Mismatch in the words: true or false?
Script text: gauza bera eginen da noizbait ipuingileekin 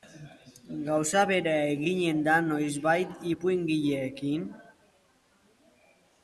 false